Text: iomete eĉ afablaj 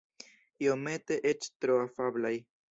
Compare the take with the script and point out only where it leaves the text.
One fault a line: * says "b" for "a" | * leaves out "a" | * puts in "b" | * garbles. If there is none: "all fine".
* puts in "tro"